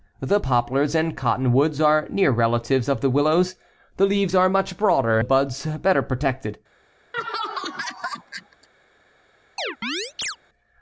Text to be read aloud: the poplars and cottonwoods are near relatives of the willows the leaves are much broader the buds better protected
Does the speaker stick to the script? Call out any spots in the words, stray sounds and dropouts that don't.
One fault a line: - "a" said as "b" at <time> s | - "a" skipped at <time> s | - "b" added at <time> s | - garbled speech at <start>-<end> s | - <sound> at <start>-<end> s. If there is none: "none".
- laugh at 7.1-8.7 s
- chirp at 9.6-10.4 s